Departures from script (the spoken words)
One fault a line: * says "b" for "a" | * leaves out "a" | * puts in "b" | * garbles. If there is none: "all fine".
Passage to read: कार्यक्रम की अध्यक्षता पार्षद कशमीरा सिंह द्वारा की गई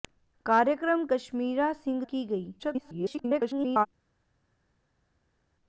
* leaves out "की अध्यक्षता पार्षद"
* leaves out "द्वारा"
* garbles